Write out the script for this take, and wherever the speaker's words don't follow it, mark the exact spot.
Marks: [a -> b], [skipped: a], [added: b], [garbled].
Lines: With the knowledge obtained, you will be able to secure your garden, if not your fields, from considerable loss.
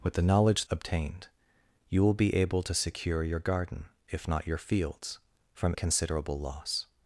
With the knowledge obtained, you will be able to secure your garden, if not your fields, from considerable loss.